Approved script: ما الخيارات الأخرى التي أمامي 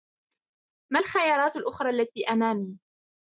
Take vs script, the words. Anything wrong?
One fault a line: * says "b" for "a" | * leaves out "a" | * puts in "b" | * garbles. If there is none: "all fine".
all fine